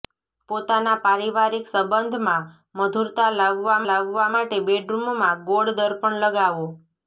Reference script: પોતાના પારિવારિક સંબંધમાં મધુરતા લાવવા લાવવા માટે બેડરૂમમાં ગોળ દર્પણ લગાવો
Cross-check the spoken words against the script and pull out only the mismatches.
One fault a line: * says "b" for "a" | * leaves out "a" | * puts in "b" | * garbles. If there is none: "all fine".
all fine